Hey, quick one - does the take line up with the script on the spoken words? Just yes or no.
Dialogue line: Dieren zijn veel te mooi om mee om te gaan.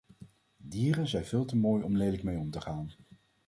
no